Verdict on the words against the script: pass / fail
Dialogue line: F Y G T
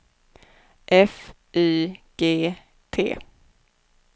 pass